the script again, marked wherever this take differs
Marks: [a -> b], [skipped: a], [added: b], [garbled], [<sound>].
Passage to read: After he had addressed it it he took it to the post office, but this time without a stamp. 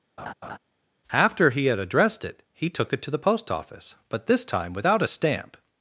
[laugh] After he had addressed it [skipped: it] he took it to the post office, but this time without a stamp.